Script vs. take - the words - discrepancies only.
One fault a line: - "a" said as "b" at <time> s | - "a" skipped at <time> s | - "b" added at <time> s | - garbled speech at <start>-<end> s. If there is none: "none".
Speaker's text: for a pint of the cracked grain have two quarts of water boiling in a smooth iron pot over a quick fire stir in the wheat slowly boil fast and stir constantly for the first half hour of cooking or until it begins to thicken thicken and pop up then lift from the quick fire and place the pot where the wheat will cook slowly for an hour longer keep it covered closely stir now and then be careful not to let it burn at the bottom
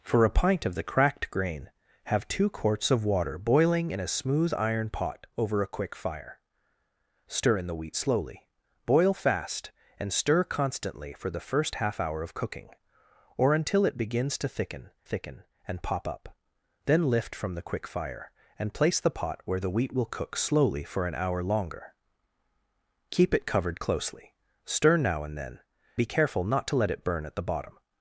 none